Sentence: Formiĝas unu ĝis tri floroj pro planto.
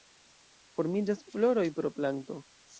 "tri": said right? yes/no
no